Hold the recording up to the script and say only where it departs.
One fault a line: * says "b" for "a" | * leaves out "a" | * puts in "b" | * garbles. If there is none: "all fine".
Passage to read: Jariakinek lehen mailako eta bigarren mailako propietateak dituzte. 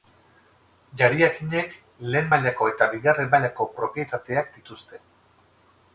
all fine